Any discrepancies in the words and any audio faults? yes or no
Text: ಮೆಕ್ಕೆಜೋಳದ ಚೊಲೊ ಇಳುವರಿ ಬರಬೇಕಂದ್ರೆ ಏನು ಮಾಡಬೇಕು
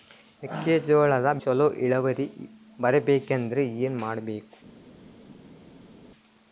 no